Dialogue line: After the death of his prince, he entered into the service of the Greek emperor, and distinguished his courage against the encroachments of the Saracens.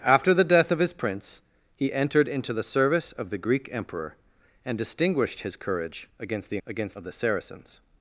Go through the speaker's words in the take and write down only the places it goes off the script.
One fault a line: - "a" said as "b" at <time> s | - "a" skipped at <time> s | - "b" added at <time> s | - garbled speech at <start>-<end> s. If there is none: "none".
- "encroachments" said as "against" at 6.7 s